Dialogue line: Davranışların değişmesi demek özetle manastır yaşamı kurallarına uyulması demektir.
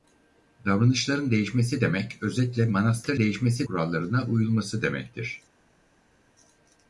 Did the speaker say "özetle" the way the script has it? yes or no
yes